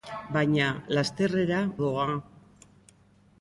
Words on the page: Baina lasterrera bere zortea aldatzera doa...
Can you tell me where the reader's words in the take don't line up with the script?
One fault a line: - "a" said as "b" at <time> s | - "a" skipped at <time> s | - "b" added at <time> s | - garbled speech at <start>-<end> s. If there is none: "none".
- "bere zortea aldatzera" skipped at 1.6 s